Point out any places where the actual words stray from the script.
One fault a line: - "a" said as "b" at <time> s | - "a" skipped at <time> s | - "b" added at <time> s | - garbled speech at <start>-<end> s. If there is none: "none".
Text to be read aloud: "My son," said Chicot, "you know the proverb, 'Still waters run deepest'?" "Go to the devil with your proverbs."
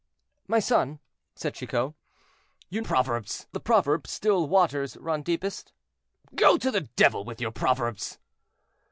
- "know" said as "proverbs" at 2.8 s